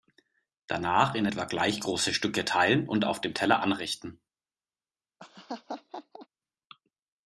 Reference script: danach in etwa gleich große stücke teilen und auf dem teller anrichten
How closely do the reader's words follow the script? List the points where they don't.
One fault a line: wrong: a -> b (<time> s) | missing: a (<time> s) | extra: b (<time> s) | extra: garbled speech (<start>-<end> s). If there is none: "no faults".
no faults